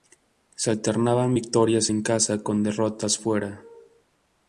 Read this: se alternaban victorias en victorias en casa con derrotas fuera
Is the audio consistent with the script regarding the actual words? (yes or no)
no